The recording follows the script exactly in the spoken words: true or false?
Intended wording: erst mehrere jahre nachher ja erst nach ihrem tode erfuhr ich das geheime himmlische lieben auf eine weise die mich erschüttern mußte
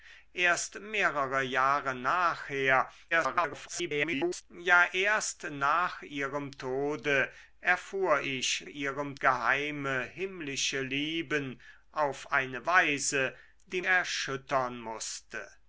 false